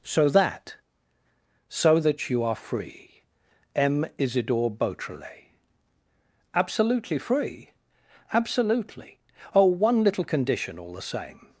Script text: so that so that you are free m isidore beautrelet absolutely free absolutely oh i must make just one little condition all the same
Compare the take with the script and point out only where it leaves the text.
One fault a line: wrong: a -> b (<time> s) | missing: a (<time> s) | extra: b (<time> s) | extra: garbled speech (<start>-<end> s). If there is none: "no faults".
missing: i must make just (9.7 s)